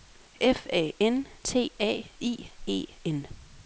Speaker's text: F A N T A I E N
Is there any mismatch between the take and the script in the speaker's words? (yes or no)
no